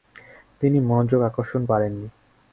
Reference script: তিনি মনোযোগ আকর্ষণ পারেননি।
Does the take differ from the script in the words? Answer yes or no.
no